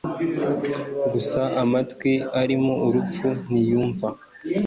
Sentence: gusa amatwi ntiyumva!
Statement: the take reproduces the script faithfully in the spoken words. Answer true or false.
false